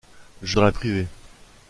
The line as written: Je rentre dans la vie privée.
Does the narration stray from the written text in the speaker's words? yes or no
yes